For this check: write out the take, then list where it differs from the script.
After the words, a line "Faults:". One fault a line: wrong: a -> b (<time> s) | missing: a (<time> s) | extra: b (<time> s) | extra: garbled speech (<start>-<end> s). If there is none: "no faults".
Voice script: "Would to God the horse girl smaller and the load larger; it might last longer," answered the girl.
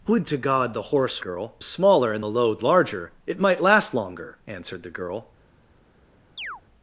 "Would to God the horse girl smaller and the load larger; it might last longer," answered the girl.
Faults:
no faults